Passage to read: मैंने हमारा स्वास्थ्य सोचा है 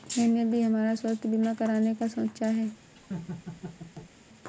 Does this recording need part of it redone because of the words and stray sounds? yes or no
yes